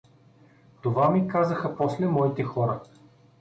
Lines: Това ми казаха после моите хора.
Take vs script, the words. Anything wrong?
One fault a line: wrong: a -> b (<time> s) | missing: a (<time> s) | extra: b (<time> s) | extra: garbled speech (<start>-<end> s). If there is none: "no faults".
no faults